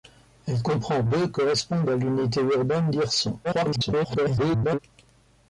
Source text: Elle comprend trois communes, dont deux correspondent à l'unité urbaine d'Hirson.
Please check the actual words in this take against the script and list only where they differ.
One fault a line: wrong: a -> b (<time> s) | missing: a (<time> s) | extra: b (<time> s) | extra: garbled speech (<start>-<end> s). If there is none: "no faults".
missing: trois communes dont (1.0 s)
extra: garbled speech (3.4-4.8 s)